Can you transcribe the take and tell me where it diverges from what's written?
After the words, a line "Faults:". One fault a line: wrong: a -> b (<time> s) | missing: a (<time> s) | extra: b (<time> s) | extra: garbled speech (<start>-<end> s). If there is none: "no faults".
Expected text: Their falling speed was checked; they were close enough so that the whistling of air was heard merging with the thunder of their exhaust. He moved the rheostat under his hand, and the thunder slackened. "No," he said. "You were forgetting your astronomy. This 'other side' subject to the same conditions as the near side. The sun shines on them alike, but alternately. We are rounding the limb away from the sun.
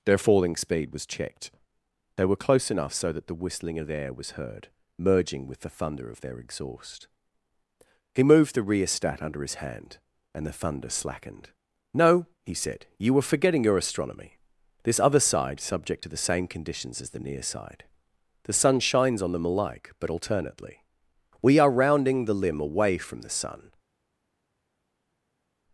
Their falling speed was checked; they were close enough so that the whistling of air was heard merging with the thunder of their exhaust. He moved the rheostat under his hand, and the thunder slackened. "No," he said. "You were forgetting your astronomy. This 'other side' subject to the same conditions as the near side. The sun shines on them alike, but alternately. We are rounding the limb away from the sun.
Faults:
no faults